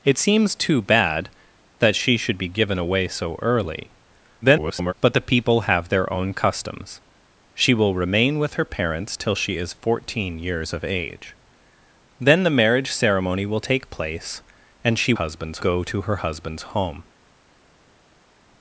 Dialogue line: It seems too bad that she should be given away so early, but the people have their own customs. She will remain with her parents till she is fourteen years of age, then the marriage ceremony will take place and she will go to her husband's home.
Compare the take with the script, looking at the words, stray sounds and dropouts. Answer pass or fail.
fail